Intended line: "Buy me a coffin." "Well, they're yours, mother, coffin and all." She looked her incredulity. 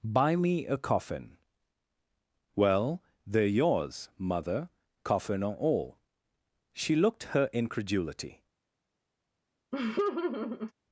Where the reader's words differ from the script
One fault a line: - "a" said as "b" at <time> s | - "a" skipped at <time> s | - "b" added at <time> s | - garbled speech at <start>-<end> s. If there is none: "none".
- "and" said as "or" at 5.4 s